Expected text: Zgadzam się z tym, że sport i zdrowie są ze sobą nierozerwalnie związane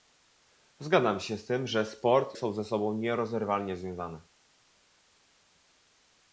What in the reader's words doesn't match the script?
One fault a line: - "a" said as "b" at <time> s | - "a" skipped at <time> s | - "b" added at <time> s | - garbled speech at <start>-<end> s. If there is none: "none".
- "i zdrowie" skipped at 2.4 s